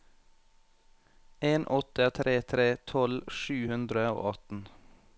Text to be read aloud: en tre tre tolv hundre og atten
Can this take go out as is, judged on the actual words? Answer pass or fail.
fail